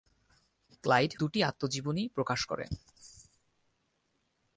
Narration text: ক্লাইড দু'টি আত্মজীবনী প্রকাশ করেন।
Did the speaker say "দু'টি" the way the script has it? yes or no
yes